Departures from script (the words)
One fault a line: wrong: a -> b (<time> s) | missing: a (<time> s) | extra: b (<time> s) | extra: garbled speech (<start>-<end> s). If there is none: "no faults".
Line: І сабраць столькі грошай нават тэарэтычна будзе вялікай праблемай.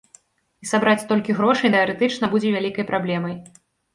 missing: нават (1.7 s)